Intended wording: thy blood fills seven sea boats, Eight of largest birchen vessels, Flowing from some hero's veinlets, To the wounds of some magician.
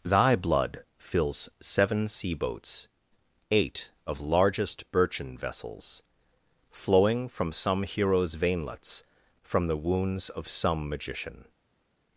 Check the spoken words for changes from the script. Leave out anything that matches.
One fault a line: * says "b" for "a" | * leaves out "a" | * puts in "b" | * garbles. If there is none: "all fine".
* says "From" for "To"